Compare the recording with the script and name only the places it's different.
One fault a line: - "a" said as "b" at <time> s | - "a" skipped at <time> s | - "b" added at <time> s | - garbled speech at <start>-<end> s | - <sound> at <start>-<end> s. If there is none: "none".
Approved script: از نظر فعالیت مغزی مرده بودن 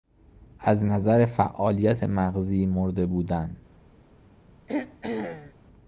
- throat clearing at 4.7-5.5 s